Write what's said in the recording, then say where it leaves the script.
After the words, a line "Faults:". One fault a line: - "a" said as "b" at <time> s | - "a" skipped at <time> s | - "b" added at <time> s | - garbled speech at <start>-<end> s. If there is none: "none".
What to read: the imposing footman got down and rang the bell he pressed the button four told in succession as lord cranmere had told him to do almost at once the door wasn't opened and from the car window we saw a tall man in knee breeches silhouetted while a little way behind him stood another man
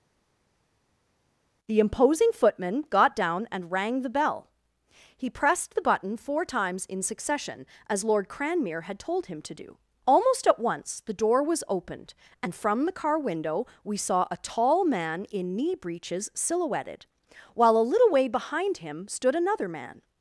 the imposing footman got down and rang the bell he pressed the button four times in succession as lord cranmere had told him to do almost at once the door was opened and from the car window we saw a tall man in knee breeches silhouetted while a little way behind him stood another man
Faults:
- "told" said as "times" at 6.4 s
- "wasn't" said as "was" at 11.4 s